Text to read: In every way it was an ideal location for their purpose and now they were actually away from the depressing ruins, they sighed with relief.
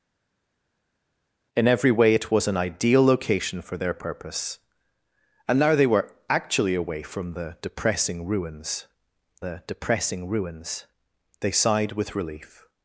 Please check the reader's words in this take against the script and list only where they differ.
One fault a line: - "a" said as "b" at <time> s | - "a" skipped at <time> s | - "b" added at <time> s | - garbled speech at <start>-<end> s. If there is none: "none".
- "the depressing ruins" added at 9.4 s